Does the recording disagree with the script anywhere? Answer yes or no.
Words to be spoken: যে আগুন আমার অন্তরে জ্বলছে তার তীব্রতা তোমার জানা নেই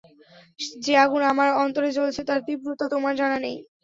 no